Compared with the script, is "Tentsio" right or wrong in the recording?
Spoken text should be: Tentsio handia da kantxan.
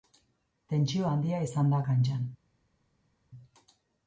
right